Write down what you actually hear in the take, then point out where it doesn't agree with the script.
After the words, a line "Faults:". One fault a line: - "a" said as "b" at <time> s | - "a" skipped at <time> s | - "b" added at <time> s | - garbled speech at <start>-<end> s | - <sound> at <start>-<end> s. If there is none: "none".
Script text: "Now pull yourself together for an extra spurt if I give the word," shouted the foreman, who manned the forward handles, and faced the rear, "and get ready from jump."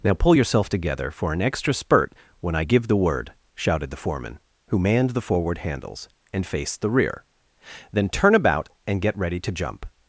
"Now pull yourself together for an extra spurt when I give the word," shouted the foreman, who manned the forward handles, and faced the rear, "then turn about and get ready to jump."
Faults:
- "if" said as "when" at 2.4 s
- "then turn about" added at 7.9 s
- "from" said as "to" at 9.4 s